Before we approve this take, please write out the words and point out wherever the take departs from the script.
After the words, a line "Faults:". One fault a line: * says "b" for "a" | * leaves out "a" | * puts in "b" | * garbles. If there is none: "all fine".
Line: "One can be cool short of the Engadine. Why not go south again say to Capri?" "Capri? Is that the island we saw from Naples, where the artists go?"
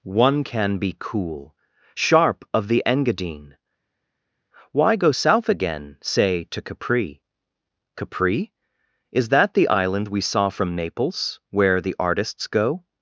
"One can be cool sharp of the Engadine. Why go south again say to Capri?" "Capri? Is that the island we saw from Naples, where the artists go?"
Faults:
* says "sharp" for "short"
* leaves out "not"